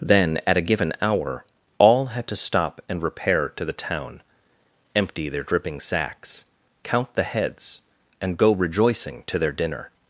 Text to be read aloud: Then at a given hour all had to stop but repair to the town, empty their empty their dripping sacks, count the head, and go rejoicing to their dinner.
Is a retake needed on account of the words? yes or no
yes